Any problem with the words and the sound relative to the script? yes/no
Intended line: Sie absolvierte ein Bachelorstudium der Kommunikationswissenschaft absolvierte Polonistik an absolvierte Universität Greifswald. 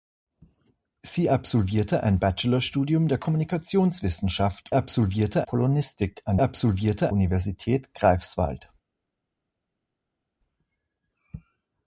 no